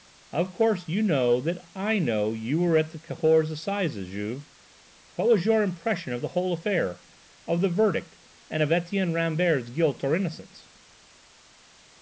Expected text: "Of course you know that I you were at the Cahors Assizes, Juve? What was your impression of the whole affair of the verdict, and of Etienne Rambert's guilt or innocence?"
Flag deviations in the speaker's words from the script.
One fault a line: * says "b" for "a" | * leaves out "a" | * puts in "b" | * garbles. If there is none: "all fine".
* puts in "know"